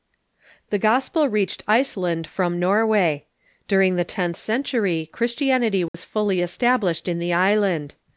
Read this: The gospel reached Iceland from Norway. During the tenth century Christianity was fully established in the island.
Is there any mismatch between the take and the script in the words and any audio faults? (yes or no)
yes